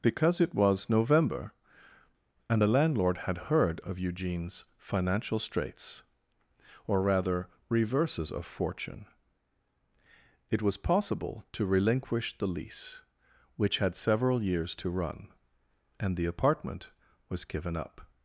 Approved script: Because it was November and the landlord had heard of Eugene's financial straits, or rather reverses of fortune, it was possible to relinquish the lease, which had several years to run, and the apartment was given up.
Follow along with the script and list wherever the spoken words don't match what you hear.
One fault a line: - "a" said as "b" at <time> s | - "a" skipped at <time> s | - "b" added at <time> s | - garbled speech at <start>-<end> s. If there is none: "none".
none